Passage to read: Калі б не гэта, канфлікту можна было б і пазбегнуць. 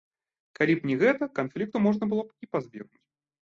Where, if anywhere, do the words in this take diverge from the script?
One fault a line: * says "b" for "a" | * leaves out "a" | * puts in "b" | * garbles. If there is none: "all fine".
all fine